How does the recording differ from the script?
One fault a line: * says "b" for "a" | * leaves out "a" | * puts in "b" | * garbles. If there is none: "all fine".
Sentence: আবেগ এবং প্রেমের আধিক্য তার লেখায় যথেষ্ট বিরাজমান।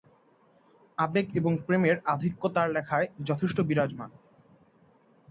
all fine